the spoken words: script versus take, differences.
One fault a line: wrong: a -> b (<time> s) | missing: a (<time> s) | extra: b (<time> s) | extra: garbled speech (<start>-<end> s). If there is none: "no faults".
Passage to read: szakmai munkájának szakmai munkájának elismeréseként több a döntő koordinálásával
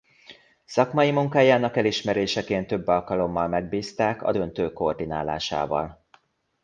wrong: szakmai munkájának elismeréseként több -> elismeréseként több alkalommal megbízták (1.8 s)